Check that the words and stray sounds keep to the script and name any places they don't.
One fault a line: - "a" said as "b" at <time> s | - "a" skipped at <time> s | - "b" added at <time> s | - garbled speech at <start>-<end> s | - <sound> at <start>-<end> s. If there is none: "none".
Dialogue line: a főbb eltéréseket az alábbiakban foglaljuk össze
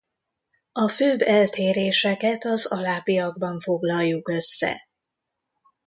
none